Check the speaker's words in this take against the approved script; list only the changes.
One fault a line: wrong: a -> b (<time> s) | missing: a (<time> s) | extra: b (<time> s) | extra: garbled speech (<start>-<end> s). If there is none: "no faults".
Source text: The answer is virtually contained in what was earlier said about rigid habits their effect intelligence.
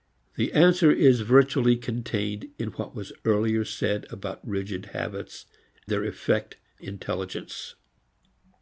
no faults